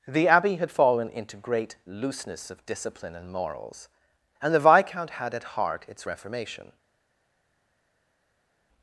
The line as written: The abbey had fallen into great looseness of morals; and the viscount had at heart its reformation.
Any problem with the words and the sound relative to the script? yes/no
yes